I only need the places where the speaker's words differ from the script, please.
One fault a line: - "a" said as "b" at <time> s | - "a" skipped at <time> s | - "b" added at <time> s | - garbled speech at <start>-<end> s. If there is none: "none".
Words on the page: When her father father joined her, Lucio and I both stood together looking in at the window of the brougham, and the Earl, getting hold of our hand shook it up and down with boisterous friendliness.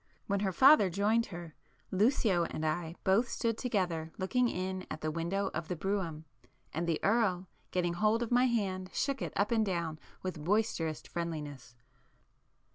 - "father" skipped at 0.9 s
- "our" said as "my" at 8.3 s